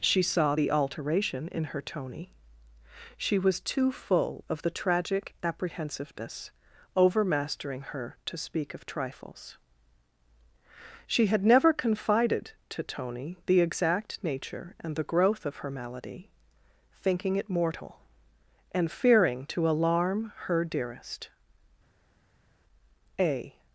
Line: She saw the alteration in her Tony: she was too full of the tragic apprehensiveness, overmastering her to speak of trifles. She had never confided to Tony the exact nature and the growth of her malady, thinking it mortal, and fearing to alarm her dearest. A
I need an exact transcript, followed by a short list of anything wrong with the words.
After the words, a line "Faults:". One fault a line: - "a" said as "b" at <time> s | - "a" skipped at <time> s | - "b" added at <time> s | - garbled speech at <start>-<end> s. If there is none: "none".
She saw the alteration in her Tony: she was too full of the tragic apprehensiveness, overmastering her to speak of trifles. She had never confided to Tony the exact nature and the growth of her malady, thinking it mortal, and fearing to alarm her dearest. A
Faults:
none